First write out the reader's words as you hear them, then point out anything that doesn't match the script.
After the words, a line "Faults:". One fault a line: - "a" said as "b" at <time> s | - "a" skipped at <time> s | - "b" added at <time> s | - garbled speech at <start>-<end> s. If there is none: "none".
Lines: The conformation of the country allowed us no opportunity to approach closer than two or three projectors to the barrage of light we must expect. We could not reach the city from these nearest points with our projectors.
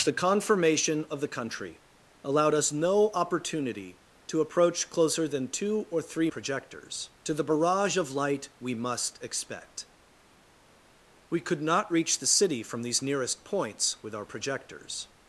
The conformation of the country allowed us no opportunity to approach closer than two or three projectors to the barrage of light we must expect. We could not reach the city from these nearest points with our projectors.
Faults:
none